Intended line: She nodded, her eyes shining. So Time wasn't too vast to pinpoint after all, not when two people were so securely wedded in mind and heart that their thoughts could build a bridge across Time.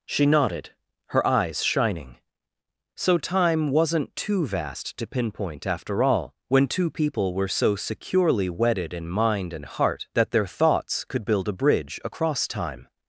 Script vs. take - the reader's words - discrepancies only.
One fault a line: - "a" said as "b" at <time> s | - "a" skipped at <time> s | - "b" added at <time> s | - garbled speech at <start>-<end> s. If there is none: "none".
- "not" skipped at 6.3 s